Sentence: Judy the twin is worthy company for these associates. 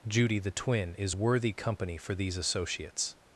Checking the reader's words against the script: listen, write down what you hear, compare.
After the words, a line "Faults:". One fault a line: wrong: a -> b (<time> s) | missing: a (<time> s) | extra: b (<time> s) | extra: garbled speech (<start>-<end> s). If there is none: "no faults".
Judy the twin is worthy company for these associates.
Faults:
no faults